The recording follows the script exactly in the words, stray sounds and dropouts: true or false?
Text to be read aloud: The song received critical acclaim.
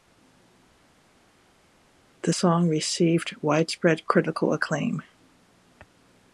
false